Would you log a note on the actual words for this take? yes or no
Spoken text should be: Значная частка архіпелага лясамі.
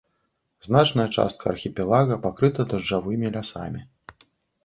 yes